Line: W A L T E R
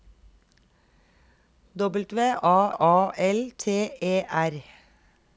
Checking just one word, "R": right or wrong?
right